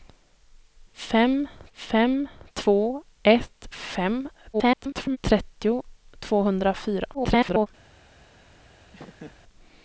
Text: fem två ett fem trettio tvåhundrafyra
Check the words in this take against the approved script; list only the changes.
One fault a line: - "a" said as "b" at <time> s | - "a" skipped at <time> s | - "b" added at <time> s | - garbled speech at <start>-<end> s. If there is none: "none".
- "fem" added at 1.7 s
- garbled speech at 4.5-5.2 s
- garbled speech at 7.1-7.7 s